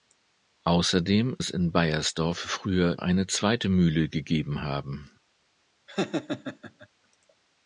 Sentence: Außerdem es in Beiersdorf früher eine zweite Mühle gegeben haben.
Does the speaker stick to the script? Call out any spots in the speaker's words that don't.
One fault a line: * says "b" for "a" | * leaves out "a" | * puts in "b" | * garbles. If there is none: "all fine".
all fine